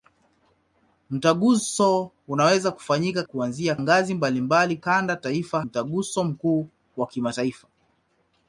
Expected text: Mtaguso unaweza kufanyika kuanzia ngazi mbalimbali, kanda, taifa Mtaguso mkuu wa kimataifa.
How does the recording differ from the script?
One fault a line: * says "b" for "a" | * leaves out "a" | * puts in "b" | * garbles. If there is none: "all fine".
all fine